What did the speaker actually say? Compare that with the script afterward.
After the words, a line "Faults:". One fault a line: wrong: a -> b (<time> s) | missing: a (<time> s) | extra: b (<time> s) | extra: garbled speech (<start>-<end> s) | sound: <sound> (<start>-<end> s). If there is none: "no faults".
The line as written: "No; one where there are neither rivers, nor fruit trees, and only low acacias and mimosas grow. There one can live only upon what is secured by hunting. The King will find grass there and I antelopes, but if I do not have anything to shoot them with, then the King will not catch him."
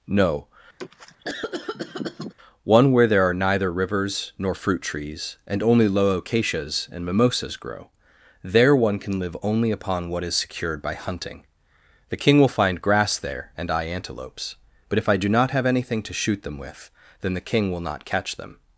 "No; one where there are neither rivers, nor fruit trees, and only low acacias and mimosas grow. There one can live only upon what is secured by hunting. The King will find grass there and I antelopes, but if I do not have anything to shoot them with, then the King will not catch them."
Faults:
sound: cough (0.8-2.3 s)
wrong: him -> them (18.4 s)